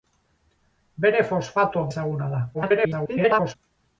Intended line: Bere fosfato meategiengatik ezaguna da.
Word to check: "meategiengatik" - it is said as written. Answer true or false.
false